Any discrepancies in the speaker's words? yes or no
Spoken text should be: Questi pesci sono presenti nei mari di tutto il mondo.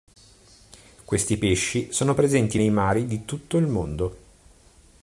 no